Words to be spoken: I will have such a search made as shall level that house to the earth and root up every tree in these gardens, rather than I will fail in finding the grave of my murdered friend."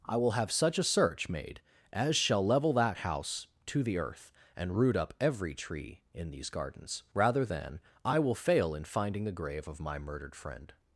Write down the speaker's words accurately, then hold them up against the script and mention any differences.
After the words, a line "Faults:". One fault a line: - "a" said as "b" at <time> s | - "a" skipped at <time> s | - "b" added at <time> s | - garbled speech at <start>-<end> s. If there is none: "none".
I will have such a search made as shall level that house to the earth and root up every tree in these gardens, rather than I will fail in finding the grave of my murdered friend."
Faults:
none